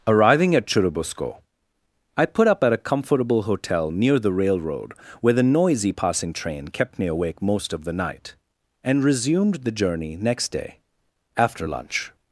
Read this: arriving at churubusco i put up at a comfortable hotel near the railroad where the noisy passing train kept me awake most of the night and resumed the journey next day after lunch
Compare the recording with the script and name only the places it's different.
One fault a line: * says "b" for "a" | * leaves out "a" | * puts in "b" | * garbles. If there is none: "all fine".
all fine